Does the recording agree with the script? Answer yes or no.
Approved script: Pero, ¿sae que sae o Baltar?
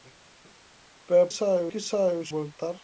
yes